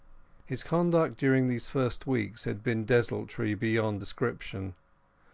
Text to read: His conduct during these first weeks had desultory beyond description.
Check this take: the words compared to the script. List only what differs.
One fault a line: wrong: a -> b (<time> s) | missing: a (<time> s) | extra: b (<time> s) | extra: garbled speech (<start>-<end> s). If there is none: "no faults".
extra: been (2.6 s)